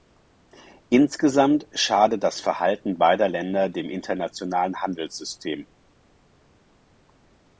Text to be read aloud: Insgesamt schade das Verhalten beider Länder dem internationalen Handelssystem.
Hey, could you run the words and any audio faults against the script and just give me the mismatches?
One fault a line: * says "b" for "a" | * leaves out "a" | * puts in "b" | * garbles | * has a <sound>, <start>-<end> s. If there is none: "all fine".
all fine